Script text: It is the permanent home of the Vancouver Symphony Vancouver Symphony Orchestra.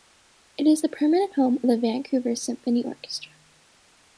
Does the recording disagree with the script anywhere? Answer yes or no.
yes